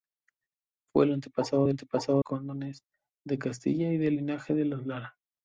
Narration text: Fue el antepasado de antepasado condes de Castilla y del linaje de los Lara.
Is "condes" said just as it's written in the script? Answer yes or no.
yes